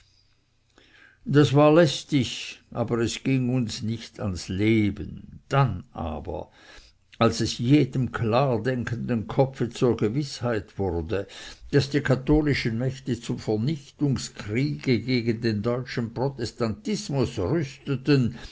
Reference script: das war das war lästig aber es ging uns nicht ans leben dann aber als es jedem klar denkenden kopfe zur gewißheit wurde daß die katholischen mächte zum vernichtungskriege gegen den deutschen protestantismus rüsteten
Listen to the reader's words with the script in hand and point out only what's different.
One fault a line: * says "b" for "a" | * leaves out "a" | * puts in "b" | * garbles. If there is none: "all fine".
* leaves out "das war"